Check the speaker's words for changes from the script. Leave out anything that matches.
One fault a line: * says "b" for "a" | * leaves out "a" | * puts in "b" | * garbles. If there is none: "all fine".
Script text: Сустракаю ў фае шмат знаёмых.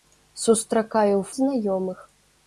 * leaves out "фае шмат"